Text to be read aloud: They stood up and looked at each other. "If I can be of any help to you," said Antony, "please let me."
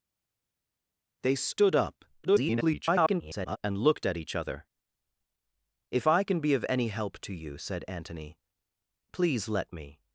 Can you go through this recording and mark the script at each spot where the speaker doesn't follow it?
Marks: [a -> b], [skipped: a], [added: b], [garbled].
They stood up [garbled] and looked at each other. "If I can be of any help to you," said Antony, "please let me."